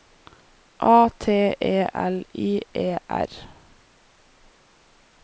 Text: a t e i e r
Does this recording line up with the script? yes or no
no